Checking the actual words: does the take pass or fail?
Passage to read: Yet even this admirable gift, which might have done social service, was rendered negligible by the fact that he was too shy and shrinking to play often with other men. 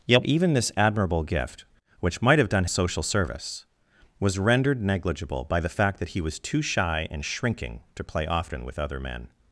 pass